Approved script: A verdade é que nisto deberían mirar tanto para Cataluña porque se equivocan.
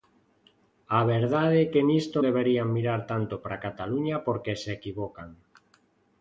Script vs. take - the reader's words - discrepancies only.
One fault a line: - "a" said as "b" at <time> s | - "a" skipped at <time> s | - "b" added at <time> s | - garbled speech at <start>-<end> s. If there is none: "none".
none